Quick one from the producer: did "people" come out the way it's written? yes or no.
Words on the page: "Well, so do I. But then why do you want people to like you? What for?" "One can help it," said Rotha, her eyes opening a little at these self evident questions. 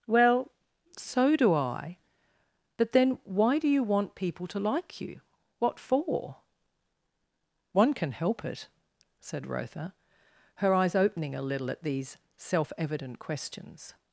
yes